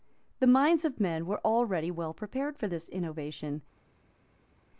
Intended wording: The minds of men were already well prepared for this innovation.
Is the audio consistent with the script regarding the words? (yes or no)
yes